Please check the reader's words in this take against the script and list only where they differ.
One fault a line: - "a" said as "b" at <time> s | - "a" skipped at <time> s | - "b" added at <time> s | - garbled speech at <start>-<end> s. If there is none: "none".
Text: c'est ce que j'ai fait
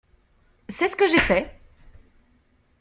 none